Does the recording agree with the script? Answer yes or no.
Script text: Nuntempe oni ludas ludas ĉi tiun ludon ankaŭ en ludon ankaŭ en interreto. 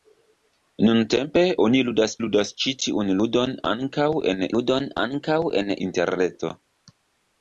yes